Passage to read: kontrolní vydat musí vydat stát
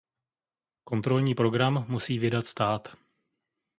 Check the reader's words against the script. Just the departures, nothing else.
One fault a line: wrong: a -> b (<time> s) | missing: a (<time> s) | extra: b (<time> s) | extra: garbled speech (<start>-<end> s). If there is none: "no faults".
wrong: vydat -> program (1.3 s)